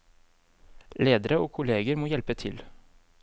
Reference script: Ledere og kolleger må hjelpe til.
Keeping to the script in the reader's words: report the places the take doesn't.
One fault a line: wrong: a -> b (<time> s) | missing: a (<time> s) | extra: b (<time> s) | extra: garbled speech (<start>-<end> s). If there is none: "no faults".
no faults